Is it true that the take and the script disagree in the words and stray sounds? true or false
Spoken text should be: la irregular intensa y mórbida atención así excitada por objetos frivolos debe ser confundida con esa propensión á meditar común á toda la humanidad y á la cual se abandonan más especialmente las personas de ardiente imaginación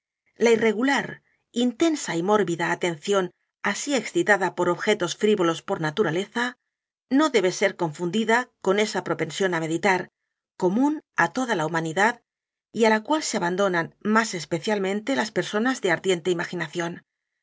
true